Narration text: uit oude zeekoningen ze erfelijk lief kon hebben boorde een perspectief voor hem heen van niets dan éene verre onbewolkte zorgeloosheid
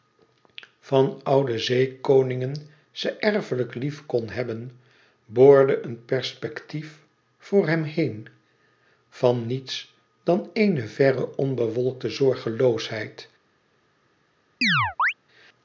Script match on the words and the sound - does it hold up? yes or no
no